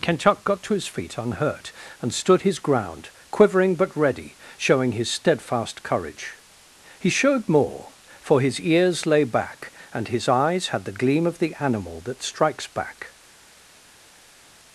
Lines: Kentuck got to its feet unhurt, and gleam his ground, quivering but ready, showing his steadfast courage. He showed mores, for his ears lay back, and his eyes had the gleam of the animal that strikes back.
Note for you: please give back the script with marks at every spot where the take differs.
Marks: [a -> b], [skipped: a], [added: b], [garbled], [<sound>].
Kentuck got to [its -> his] feet unhurt, and [gleam -> stood] his ground, quivering but ready, showing his steadfast courage. He showed [mores, -> more] for his ears lay back, and his eyes had the gleam of the animal that strikes back.